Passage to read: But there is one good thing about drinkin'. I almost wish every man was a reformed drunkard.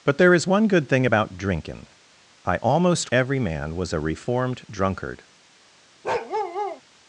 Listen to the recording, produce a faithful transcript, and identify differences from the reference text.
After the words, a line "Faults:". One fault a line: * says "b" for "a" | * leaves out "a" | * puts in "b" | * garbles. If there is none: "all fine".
But there is one good thing about drinkin'. I almost every man was a reformed drunkard.
Faults:
* leaves out "wish"